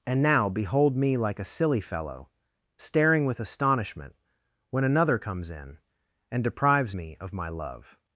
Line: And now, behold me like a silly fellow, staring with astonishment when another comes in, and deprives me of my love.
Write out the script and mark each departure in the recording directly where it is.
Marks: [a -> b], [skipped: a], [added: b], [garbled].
And now, behold me like a silly fellow, staring with astonishment when another comes in, and deprives me of my love.